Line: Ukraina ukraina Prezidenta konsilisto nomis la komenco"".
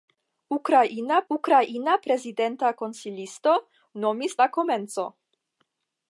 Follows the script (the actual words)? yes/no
yes